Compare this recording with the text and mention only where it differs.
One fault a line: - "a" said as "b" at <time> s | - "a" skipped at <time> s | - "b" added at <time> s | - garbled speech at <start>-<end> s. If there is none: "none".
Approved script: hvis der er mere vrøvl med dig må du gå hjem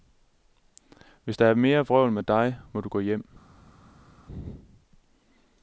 none